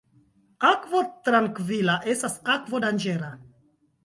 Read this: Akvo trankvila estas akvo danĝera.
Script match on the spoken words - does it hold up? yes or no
yes